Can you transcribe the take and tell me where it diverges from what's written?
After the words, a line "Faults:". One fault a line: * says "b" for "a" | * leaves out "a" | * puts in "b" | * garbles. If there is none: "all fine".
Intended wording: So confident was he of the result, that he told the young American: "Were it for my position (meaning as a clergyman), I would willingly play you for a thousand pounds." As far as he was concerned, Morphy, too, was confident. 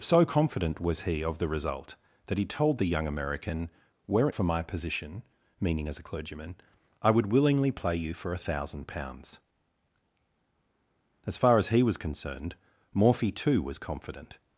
So confident was he of the result, that he told the young American: "Were it for my position (meaning as a clergyman), I would willingly play you for a thousand pounds." As far as he was concerned, Morphy, too, was confident.
Faults:
all fine